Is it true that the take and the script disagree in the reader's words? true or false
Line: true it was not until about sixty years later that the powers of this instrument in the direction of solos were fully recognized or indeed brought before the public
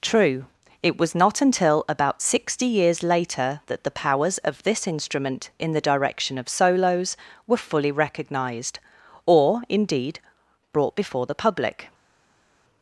false